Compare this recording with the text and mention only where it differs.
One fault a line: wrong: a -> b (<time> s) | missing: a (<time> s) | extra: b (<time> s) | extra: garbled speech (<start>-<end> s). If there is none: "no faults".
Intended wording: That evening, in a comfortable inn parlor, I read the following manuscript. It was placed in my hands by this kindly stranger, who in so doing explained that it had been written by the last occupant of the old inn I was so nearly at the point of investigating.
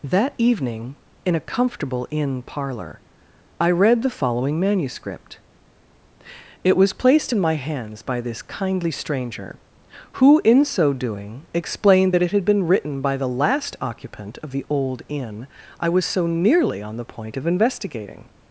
wrong: at -> on (16.8 s)